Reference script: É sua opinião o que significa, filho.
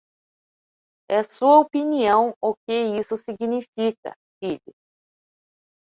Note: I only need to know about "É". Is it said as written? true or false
true